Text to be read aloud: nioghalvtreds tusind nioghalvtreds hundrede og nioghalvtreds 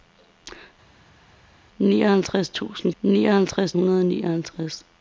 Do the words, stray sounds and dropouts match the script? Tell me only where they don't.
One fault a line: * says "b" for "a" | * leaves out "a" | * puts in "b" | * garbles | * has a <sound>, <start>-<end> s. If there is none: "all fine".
all fine